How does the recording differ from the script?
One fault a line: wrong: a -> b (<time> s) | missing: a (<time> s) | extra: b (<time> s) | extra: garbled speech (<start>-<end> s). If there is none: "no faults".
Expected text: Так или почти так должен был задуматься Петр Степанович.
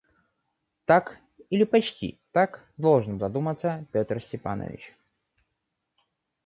missing: был (3.2 s)